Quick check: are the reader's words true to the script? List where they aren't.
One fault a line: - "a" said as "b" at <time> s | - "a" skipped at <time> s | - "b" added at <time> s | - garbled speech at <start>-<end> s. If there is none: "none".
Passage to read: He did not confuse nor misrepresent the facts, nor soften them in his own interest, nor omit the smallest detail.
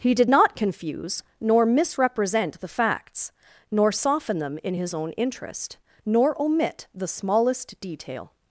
none